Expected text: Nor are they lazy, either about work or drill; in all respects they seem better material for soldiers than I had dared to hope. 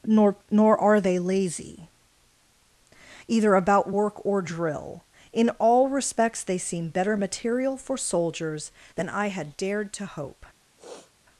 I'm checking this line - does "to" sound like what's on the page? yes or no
yes